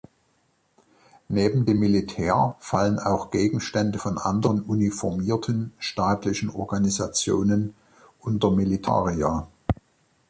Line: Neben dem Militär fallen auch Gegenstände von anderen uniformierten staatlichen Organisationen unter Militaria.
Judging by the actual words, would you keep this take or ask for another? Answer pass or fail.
pass